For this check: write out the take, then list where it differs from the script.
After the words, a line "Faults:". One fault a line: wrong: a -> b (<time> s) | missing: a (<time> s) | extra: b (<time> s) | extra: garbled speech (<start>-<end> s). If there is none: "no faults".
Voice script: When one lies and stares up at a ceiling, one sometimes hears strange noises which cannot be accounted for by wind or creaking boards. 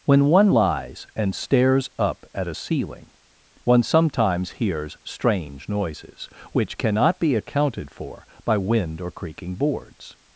When one lies and stares up at a ceiling, one sometimes hears strange noises which cannot be accounted for by wind or creaking boards.
Faults:
no faults